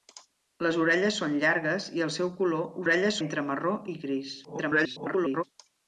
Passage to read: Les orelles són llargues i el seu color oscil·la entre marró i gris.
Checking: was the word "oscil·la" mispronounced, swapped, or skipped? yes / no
yes